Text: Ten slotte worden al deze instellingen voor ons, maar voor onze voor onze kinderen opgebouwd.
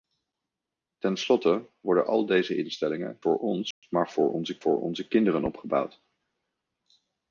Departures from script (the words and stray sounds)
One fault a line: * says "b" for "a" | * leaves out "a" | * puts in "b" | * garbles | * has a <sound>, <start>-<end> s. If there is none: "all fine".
* has a dropout, 3.7-3.8 s